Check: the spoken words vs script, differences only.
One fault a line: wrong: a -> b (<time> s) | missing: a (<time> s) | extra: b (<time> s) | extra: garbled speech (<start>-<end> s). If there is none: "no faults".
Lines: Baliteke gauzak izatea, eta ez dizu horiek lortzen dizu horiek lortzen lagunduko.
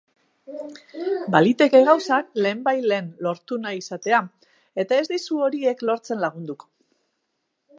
extra: lehenbailehen lortu nahi (2.5 s)
missing: dizu horiek lortzen (6.2 s)